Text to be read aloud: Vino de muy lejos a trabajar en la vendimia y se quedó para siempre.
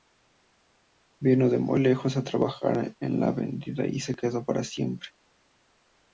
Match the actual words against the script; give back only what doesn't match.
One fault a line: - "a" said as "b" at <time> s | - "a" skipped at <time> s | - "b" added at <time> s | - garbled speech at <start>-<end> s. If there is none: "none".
none